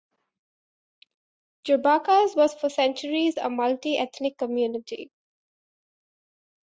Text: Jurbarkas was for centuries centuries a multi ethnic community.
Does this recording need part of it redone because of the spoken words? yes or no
yes